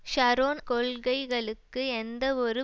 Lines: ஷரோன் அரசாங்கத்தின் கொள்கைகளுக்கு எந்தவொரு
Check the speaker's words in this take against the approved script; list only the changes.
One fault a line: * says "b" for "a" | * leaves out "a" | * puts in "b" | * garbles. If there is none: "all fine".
* leaves out "அரசாங்கத்தின்"